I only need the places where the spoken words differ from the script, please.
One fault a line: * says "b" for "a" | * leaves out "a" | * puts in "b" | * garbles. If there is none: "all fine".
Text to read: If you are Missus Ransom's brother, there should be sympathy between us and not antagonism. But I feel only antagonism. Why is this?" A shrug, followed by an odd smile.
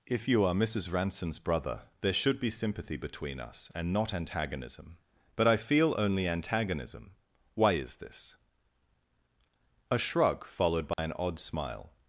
all fine